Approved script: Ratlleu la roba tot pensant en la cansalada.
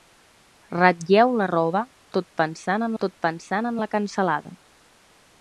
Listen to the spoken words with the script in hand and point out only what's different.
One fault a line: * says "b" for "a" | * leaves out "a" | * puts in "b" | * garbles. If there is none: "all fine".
* puts in "tot pensant en"